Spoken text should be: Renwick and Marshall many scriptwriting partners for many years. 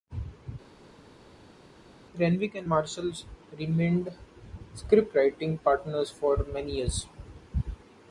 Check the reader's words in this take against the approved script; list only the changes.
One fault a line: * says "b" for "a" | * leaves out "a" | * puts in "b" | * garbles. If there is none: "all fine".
* says "remained" for "many"